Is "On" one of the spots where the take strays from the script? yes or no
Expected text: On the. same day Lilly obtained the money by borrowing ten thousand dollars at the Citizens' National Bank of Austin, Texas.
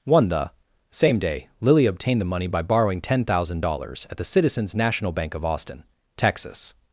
yes